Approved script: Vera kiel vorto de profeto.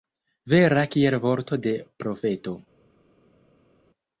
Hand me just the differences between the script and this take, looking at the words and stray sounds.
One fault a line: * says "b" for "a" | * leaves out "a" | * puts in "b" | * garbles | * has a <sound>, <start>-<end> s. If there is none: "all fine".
all fine